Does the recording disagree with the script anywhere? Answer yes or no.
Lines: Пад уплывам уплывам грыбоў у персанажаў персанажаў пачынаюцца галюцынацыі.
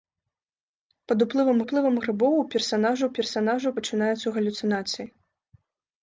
no